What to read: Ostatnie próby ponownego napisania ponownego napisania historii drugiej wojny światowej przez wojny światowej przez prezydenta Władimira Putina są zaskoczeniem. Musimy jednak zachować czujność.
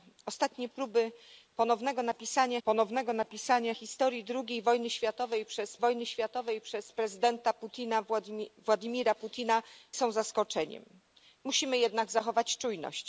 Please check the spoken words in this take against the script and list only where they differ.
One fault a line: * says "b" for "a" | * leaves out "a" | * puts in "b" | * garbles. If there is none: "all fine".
all fine